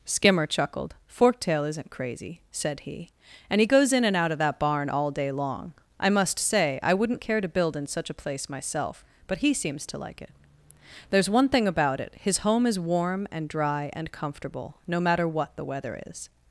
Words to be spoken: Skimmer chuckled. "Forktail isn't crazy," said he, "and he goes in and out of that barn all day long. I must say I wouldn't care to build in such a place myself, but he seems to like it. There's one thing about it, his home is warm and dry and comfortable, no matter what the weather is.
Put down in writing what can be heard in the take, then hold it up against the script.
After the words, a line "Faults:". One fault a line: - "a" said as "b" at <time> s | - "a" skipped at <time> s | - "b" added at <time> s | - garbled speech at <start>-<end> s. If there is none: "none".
Skimmer chuckled. "Forktail isn't crazy," said he, "and he goes in and out of that barn all day long. I must say I wouldn't care to build in such a place myself, but he seems to like it. There's one thing about it, his home is warm and dry and comfortable, no matter what the weather is.
Faults:
none